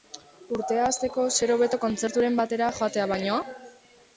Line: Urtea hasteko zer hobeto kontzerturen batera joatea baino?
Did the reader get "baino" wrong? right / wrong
right